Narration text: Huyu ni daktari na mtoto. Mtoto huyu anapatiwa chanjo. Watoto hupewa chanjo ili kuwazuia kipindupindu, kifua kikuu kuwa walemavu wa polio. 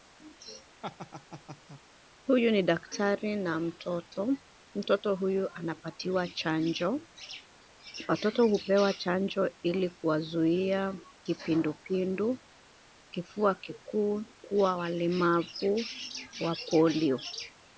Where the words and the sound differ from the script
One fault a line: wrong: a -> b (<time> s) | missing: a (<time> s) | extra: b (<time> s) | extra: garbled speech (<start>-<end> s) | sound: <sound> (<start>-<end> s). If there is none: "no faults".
sound: laugh (0.8-1.8 s)